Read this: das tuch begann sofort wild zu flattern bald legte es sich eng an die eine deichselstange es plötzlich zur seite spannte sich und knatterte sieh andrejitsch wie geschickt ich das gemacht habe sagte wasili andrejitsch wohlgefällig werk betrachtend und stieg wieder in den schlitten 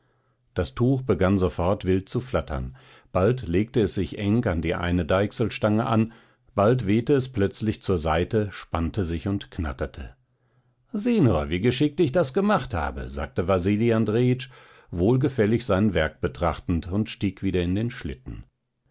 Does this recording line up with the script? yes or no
no